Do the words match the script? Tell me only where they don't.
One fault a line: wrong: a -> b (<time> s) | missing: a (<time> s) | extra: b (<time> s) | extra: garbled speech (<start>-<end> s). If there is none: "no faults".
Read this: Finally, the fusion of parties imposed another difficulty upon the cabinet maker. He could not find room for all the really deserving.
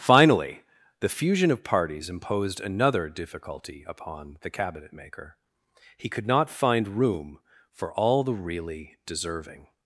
no faults